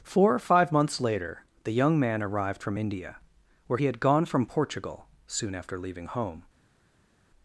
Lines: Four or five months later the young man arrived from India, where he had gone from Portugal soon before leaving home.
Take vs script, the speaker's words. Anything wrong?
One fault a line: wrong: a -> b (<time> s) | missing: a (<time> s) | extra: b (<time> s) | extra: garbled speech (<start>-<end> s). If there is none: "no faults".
wrong: before -> after (5.5 s)